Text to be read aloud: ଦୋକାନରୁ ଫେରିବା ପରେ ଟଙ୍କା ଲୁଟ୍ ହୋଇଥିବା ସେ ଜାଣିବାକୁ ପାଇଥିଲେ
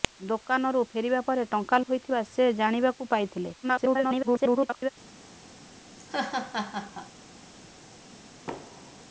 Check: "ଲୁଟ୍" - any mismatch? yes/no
yes